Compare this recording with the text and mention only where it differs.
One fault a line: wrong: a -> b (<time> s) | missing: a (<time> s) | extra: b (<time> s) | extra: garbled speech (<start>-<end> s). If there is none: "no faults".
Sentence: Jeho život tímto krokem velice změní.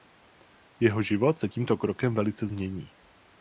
extra: se (1.4 s)